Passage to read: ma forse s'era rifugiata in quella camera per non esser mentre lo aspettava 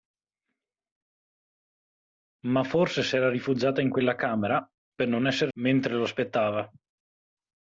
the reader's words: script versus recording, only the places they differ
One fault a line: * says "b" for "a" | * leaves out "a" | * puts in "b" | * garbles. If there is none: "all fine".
all fine